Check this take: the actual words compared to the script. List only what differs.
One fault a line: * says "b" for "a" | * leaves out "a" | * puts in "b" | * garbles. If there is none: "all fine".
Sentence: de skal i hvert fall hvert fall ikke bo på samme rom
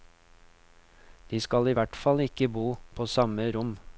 * leaves out "hvert fall"